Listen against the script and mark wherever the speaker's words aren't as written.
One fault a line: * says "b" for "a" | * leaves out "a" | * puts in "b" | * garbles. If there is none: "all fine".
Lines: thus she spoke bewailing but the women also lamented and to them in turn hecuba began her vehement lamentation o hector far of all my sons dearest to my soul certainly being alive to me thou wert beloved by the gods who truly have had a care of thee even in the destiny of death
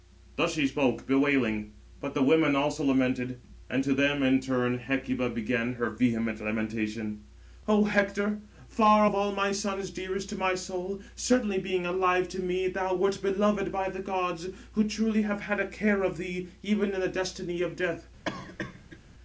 all fine